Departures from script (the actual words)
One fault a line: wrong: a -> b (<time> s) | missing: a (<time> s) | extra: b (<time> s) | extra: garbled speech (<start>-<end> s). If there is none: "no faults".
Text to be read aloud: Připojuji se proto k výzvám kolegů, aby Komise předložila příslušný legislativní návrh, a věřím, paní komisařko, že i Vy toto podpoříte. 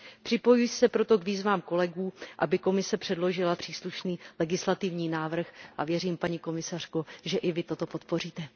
no faults